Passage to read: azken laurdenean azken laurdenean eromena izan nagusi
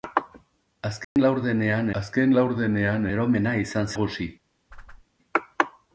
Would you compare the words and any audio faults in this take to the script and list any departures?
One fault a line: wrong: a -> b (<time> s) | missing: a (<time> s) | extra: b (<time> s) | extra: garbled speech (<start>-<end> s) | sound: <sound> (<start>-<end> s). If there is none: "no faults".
sound: dropout (1.0-1.2 s)
sound: whoosh (4.7-5.1 s)